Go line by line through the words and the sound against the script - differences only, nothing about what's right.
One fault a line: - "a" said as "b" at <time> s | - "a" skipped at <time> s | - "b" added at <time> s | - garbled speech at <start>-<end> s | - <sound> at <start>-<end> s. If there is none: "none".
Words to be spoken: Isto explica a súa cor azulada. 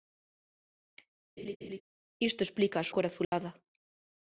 - laugh at 1.4-1.8 s
- "súa" skipped at 2.9 s
- dropout at 3.2-3.3 s